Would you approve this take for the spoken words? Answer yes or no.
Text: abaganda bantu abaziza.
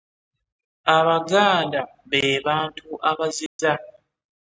no